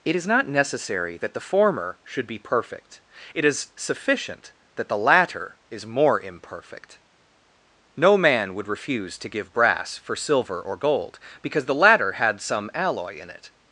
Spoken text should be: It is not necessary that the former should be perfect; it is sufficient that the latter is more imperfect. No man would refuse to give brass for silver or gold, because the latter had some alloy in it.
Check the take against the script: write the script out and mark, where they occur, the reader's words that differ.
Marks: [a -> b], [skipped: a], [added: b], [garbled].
It is not necessary that the former should be perfect; it is sufficient that the latter is more imperfect. No man would refuse to give brass for silver or gold, because the latter had some alloy in it.